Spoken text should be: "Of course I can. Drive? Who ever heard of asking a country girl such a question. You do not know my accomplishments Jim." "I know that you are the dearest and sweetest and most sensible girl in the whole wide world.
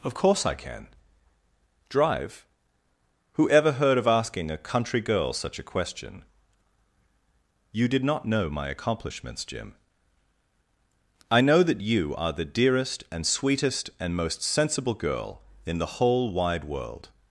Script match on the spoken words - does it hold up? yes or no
no